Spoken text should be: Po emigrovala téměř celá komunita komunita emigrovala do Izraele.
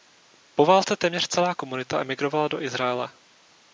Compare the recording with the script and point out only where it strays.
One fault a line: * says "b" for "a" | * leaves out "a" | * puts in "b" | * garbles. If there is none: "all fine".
* says "válce" for "emigrovala"
* leaves out "komunita"